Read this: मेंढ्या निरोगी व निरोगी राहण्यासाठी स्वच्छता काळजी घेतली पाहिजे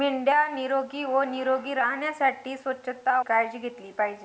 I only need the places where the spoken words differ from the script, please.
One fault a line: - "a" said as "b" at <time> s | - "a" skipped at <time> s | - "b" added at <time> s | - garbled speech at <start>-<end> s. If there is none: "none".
none